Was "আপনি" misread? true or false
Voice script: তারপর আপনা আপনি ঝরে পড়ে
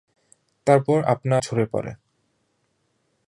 true